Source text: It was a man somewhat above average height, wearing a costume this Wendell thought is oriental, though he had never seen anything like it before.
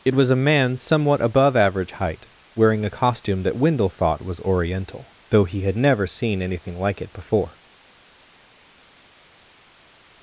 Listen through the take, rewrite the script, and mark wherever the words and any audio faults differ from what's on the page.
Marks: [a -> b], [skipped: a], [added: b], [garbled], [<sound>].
It was a man somewhat above average height, wearing a costume [this -> that] Wendell thought [is -> was] oriental, though he had never seen anything like it before.